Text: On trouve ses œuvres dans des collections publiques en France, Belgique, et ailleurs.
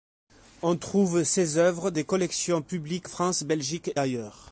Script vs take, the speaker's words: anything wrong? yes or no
yes